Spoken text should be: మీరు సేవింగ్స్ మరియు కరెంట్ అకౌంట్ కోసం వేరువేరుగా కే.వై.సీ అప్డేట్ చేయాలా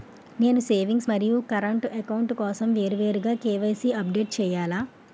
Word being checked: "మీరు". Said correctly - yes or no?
no